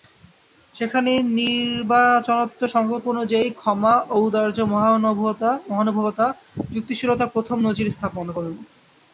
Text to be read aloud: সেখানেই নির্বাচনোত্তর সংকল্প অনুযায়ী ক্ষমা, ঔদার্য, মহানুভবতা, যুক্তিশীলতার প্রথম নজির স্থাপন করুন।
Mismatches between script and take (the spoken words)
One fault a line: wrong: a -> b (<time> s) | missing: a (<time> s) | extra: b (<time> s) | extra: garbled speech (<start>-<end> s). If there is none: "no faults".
no faults